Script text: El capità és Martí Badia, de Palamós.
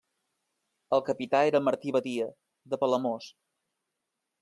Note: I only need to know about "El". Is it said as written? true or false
true